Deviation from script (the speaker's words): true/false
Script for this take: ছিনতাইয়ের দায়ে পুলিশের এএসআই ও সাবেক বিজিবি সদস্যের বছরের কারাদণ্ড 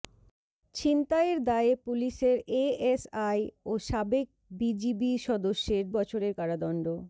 false